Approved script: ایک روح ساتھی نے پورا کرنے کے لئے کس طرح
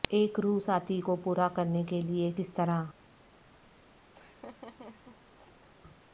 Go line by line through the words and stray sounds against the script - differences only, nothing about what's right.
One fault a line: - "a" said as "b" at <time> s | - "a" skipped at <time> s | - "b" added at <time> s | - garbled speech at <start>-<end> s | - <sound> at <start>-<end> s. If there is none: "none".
- "نے" said as "کو" at 1.0 s
- laugh at 4.1-5.7 s